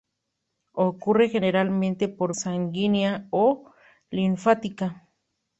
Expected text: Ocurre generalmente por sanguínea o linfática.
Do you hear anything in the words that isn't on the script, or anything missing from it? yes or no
no